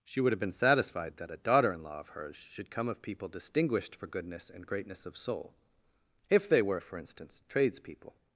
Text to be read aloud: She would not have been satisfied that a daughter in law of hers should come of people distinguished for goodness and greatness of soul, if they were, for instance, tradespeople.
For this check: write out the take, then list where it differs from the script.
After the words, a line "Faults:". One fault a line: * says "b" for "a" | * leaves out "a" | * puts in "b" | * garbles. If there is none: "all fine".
She would have been satisfied that a daughter in law of hers should come of people distinguished for goodness and greatness of soul, if they were, for instance, tradespeople.
Faults:
* leaves out "not"